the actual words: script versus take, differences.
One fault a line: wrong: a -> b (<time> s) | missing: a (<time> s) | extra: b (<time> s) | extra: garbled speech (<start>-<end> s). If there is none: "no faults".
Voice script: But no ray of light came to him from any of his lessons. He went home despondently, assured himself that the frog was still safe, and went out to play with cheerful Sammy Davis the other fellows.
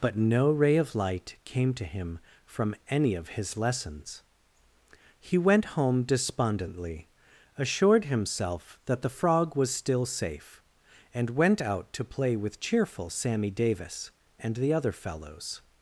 extra: and (14.4 s)